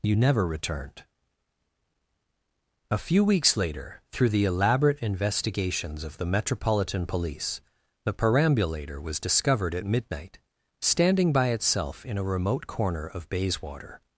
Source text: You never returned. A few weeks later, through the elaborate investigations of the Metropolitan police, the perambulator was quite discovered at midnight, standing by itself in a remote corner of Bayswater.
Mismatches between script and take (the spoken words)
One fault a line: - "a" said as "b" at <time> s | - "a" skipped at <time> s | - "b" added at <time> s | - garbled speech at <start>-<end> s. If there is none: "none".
- "quite" skipped at 9.2 s